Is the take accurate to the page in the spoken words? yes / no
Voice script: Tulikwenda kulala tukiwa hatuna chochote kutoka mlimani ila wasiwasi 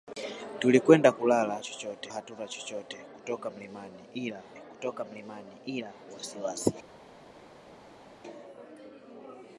no